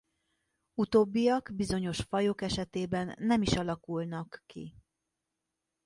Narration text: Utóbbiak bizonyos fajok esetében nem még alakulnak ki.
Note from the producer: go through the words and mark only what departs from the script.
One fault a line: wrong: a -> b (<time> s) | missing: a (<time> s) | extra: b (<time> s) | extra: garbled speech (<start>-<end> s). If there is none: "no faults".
wrong: még -> is (3.4 s)